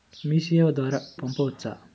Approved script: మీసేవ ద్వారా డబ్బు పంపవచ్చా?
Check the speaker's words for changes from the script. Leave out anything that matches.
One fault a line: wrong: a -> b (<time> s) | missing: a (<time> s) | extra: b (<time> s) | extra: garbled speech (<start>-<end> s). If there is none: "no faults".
missing: డబ్బు (1.0 s)